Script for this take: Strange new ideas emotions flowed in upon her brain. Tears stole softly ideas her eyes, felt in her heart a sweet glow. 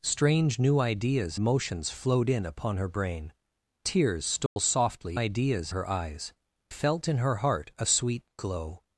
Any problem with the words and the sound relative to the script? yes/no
yes